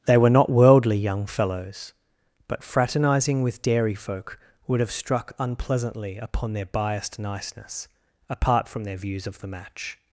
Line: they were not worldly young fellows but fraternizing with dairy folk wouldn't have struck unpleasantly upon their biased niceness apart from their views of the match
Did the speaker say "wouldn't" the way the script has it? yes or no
no